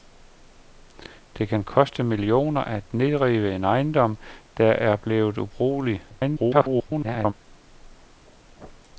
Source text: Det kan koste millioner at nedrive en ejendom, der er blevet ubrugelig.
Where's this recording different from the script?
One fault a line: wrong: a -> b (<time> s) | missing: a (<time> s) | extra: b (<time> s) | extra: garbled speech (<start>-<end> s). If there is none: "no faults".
extra: garbled speech (6.1-7.3 s)